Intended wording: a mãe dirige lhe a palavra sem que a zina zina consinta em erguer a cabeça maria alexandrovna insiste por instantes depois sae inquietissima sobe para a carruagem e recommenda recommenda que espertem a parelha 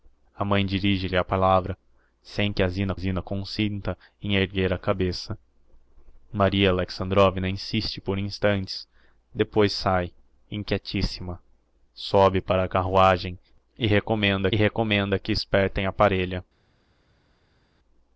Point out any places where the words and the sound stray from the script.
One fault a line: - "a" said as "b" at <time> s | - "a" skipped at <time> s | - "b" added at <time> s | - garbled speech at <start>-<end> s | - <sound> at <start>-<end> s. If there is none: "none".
none